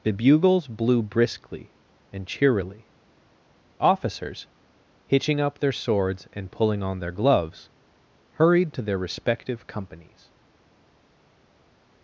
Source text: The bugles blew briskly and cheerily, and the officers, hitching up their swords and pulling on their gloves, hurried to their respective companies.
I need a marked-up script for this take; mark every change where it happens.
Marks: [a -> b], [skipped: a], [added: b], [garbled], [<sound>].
The bugles blew briskly and cheerily, [skipped: and the] officers, hitching up their swords and pulling on their gloves, hurried to their respective companies.